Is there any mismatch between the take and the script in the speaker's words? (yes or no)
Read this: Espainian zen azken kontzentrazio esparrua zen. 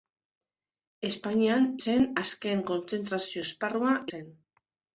no